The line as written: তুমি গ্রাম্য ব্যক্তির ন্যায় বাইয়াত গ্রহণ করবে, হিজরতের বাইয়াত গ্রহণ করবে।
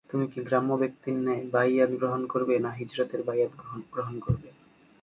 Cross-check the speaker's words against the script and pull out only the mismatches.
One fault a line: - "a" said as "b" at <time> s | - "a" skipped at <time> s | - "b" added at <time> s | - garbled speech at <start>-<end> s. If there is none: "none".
- "কি" added at 0.3 s
- "না" added at 2.6 s